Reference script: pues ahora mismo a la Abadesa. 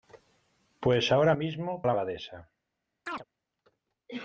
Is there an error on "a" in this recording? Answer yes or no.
no